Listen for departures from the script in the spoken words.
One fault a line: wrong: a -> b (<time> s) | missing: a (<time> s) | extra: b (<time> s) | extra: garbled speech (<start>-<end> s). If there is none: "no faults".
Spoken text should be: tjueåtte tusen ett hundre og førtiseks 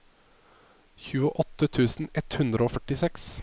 no faults